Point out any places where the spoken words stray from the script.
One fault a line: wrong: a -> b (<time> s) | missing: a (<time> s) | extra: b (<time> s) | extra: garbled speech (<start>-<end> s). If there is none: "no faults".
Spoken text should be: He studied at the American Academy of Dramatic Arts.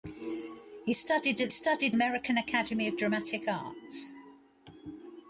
wrong: the -> studied (1.5 s)